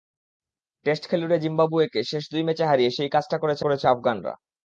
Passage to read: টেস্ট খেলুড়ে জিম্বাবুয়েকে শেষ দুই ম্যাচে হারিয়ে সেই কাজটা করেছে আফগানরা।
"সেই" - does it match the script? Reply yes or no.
yes